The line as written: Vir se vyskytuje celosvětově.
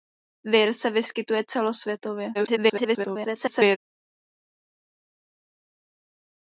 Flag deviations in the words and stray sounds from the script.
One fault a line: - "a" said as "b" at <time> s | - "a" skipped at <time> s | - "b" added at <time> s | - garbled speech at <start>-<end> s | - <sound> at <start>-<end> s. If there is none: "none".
- garbled speech at 2.3-3.8 s